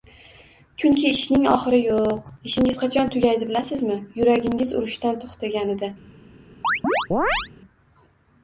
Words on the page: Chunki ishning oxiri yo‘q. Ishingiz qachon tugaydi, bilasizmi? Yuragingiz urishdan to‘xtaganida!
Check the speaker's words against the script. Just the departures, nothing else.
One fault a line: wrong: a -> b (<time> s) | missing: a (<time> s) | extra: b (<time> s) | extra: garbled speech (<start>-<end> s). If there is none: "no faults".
no faults